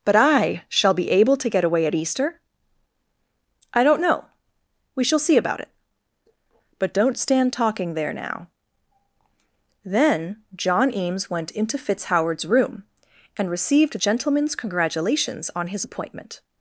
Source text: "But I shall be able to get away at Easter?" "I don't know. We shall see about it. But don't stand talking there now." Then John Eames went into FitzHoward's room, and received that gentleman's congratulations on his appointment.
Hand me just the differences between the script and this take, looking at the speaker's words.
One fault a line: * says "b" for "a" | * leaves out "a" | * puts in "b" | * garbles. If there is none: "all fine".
* leaves out "that"